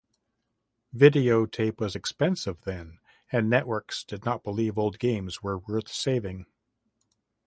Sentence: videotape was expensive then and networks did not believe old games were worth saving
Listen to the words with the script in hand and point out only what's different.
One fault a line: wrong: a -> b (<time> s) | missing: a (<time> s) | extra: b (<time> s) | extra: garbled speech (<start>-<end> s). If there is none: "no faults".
no faults